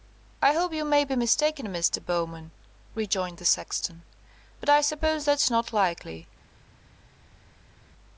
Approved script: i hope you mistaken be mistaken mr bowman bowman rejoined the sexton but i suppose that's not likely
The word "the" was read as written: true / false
true